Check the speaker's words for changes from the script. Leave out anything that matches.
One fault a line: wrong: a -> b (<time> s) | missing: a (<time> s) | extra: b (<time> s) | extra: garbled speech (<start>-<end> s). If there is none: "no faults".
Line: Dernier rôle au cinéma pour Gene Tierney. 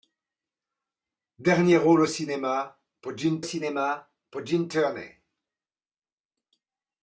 extra: cinéma pour Gene (3.4 s)